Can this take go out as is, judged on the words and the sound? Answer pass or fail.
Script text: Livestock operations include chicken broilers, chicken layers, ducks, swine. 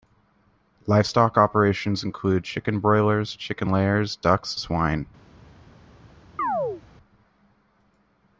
fail